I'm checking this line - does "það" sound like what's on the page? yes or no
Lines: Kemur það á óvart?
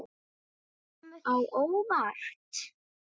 no